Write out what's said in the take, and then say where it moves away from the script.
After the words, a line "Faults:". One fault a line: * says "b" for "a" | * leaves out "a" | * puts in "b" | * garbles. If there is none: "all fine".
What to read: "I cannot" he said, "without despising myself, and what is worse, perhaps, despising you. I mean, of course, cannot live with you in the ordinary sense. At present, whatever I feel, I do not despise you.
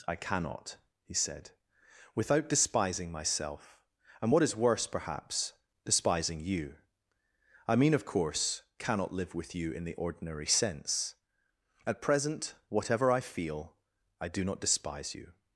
"I cannot" he said, "without despising myself, and what is worse, perhaps, despising you. I mean, of course, cannot live with you in the ordinary sense. At present, whatever I feel, I do not despise you.
Faults:
all fine